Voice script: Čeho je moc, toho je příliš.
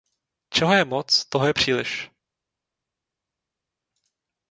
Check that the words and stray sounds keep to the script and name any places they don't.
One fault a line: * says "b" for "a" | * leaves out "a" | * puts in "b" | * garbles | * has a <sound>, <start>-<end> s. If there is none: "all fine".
all fine